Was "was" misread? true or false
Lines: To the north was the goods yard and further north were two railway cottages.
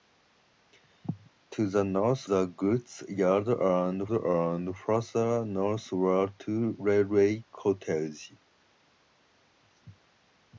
true